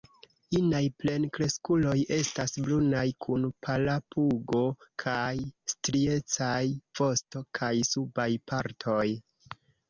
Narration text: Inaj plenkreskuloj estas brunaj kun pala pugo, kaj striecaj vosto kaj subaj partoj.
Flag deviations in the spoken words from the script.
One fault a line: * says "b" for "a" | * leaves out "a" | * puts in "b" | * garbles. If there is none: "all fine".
all fine